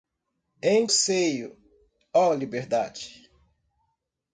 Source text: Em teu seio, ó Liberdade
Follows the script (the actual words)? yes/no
no